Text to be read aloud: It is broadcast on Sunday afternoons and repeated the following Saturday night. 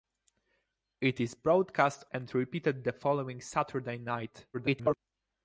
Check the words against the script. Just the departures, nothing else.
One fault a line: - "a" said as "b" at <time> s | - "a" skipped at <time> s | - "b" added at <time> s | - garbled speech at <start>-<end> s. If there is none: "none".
- "on Sunday afternoons" skipped at 2.0 s
- garbled speech at 4.5-5.0 s